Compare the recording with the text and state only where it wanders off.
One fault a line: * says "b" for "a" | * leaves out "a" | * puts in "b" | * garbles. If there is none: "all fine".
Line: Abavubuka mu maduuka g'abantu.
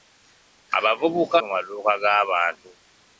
all fine